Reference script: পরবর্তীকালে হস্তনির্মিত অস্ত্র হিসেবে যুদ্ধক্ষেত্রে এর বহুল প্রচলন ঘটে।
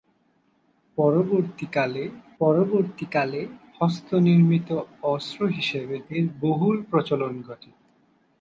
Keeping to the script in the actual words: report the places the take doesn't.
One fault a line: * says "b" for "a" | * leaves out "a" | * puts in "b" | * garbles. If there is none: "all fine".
* puts in "পরবর্তীকালে"
* leaves out "যুদ্ধক্ষেত্রে"